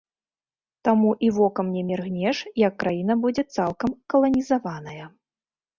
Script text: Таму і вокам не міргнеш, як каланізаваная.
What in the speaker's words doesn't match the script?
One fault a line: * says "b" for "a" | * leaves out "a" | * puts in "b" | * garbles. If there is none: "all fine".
* puts in "краіна будзе цалкам"